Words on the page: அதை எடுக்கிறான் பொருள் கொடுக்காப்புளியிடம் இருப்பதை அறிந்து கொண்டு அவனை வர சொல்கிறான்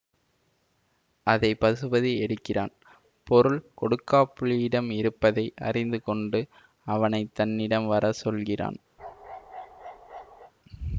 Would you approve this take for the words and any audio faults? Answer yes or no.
no